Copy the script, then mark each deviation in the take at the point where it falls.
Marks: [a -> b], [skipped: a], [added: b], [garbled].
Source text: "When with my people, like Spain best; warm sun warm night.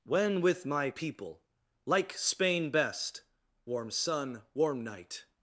"When with my people, like Spain best; warm sun warm night.